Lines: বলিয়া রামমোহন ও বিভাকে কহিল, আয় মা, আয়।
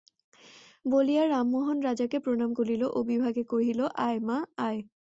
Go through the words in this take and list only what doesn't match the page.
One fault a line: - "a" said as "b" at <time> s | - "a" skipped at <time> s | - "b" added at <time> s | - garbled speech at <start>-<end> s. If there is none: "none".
- "রাজাকে প্রণাম করিল" added at 1.8 s